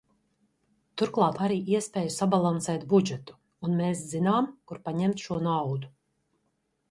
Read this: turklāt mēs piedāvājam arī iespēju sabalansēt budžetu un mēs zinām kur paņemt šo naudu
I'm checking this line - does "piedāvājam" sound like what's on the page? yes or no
no